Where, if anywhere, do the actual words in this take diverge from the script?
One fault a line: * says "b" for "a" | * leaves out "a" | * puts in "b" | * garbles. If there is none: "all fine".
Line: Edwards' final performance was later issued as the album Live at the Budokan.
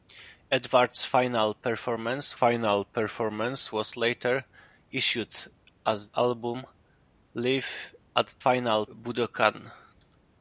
* puts in "final performance"
* leaves out "the"
* says "final" for "the"